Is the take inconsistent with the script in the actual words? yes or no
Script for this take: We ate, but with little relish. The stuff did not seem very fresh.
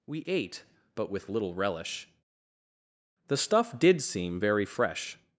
yes